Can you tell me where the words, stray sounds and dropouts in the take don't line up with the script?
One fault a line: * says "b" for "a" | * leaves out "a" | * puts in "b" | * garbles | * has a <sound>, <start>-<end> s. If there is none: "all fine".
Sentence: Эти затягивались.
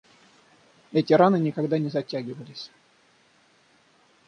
* puts in "раны никогда не"